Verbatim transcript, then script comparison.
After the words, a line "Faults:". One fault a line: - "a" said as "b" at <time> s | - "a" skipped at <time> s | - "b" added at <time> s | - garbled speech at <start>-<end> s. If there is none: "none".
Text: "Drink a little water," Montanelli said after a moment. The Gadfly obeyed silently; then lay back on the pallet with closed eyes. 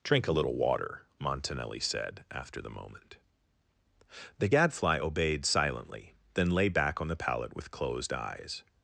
"Drink a little water," Montanelli said after the moment. The Gadfly obeyed silently; then lay back on the pallet with closed eyes.
Faults:
- "a" said as "the" at 2.6 s